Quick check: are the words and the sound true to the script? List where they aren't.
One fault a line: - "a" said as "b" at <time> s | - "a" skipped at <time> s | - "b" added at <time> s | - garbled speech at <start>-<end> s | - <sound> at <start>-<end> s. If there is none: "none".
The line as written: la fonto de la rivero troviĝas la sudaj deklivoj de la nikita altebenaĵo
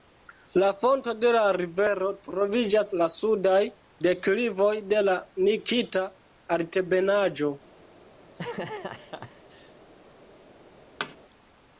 - laugh at 8.2-9.8 s
- thud at 11.0-11.2 s